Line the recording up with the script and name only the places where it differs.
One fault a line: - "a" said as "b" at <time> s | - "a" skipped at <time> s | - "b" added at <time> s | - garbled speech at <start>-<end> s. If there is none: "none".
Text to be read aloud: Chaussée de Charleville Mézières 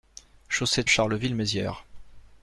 none